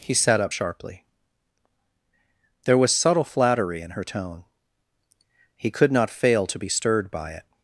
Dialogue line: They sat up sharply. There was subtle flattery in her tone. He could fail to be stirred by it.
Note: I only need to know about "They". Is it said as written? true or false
false